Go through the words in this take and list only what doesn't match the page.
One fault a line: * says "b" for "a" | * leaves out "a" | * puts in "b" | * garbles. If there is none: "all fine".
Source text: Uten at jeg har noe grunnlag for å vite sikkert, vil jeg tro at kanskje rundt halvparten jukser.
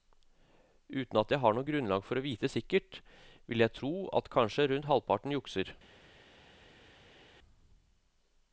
all fine